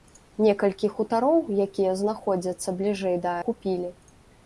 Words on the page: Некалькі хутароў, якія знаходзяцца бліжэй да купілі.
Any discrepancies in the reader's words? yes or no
no